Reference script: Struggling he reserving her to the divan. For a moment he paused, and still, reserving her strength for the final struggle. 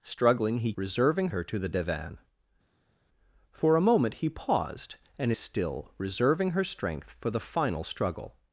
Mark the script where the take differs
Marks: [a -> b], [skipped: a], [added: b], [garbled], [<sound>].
Struggling he reserving her to the divan. For a moment he paused, and still, reserving her strength for the final struggle.